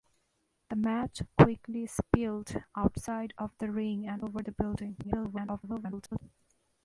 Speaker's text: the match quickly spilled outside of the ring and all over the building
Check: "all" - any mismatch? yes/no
yes